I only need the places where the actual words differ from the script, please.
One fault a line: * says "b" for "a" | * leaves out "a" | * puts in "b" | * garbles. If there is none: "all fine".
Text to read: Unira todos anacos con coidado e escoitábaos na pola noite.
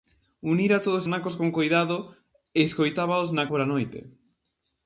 all fine